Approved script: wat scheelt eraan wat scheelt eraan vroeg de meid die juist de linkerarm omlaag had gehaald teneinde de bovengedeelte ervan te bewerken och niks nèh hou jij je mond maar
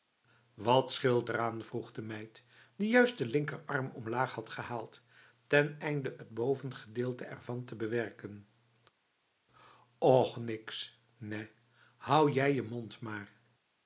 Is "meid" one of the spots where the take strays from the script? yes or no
no